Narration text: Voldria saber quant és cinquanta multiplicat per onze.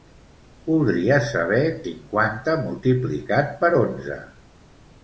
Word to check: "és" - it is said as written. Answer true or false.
false